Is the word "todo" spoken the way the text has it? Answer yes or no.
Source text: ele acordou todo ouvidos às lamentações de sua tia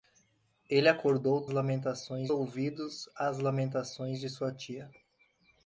no